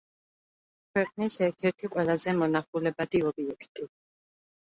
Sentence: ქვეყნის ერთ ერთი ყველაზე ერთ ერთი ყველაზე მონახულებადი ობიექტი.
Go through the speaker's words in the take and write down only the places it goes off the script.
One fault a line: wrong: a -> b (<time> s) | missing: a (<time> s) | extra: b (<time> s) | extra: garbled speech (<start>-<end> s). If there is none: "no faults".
missing: ერთ ერთი ყველაზე (2.4 s)